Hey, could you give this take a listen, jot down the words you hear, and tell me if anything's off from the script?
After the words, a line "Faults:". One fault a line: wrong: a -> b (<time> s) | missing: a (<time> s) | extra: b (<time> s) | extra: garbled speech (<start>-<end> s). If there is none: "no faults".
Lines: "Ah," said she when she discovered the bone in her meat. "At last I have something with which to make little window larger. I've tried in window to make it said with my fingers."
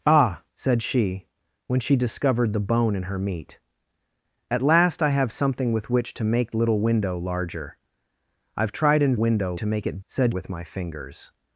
"Ah," said she when she discovered the bone in her meat. "At last I have something with which to make little window larger. I've tried in window to make it said with my fingers."
Faults:
no faults